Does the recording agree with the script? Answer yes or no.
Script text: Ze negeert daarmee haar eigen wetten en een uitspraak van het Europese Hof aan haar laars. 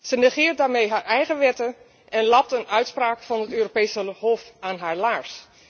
no